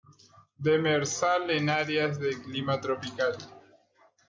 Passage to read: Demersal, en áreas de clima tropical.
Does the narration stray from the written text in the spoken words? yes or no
no